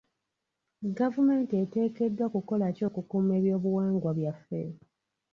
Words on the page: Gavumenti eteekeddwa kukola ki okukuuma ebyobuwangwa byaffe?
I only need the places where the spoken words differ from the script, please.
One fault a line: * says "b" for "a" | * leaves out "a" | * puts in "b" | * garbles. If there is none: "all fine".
all fine